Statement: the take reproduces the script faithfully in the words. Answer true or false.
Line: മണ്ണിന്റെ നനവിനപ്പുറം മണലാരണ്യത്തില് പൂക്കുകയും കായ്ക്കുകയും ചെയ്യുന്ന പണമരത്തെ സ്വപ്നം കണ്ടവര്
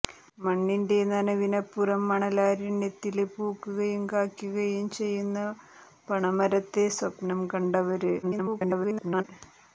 false